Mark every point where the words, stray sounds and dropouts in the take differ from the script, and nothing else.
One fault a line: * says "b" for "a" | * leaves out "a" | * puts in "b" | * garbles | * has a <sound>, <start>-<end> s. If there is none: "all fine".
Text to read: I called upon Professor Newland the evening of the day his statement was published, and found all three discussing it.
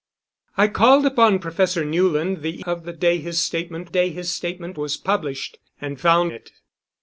* leaves out "evening"
* puts in "day his statement"
* leaves out "all three discussing"